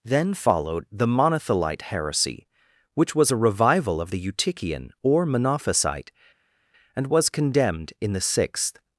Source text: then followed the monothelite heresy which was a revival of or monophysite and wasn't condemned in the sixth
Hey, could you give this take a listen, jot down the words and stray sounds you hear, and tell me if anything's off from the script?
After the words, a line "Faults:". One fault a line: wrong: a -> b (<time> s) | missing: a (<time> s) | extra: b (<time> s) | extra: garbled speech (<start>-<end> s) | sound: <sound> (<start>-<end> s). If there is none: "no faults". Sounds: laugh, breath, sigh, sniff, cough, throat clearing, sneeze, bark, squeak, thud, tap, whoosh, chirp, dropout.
then followed the monothelite heresy which was a revival of the eutychian or monophysite and was condemned in the sixth
Faults:
extra: the eutychian (4.1 s)
wrong: wasn't -> was (7.1 s)